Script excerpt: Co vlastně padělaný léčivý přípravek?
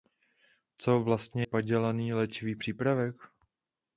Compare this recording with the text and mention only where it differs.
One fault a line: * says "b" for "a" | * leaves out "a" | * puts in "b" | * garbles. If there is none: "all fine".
all fine